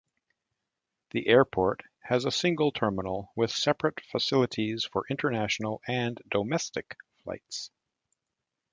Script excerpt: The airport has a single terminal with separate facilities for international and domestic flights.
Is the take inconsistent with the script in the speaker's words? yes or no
no